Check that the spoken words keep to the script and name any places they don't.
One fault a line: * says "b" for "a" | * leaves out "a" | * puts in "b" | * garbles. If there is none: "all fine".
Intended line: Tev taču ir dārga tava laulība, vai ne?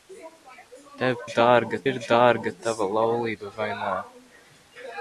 * says "dārga" for "taču"